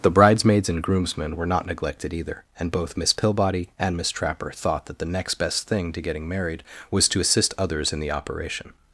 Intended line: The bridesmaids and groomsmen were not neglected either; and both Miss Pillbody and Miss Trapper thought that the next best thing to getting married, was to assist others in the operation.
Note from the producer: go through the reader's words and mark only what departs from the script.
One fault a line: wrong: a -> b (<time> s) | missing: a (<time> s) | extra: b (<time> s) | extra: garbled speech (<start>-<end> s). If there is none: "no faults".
no faults